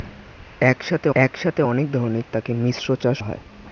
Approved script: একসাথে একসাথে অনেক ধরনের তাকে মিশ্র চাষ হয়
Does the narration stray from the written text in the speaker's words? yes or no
no